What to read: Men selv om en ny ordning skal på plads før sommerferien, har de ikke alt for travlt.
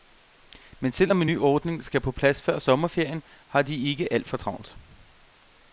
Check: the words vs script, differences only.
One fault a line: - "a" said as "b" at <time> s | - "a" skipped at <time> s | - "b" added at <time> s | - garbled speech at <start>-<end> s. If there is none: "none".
none